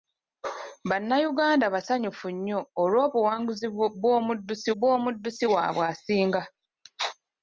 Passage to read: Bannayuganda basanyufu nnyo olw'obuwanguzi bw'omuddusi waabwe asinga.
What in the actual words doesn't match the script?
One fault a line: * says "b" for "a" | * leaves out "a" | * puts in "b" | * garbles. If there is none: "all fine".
* puts in "bw'omuddusi"